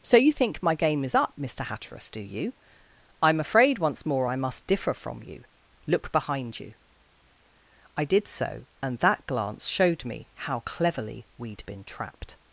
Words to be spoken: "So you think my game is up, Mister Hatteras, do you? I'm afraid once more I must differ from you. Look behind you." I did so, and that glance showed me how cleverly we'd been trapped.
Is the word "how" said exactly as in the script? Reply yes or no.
yes